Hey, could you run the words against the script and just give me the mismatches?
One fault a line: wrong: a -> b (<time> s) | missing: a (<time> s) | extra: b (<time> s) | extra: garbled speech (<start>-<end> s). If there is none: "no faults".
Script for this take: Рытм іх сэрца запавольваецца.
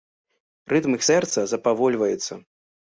no faults